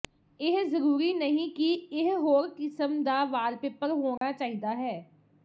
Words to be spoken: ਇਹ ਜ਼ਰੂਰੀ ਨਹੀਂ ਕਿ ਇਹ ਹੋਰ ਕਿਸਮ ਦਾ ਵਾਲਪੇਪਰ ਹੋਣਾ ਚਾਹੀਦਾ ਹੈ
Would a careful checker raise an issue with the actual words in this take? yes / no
no